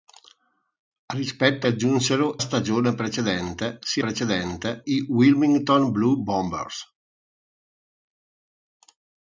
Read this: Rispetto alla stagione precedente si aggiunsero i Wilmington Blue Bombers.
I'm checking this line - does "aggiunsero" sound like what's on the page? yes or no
no